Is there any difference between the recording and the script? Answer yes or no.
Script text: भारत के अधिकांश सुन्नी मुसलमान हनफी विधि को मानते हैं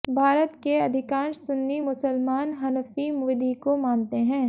no